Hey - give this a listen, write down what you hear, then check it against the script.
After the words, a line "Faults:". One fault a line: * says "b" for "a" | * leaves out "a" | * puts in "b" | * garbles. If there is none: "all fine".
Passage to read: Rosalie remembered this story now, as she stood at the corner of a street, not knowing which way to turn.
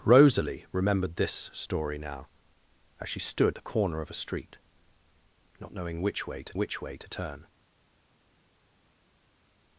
Rosalie remembered this story now, as she stood the corner of a street, not knowing which way to which way to turn.
Faults:
* leaves out "at"
* puts in "which way to"